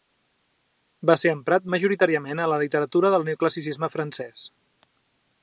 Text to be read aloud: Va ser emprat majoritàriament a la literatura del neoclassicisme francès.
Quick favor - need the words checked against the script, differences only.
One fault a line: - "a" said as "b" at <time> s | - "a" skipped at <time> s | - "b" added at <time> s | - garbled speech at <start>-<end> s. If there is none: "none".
none